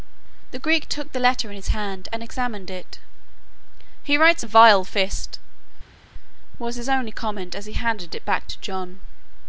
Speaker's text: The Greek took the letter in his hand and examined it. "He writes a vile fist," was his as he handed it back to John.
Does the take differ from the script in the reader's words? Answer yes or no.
yes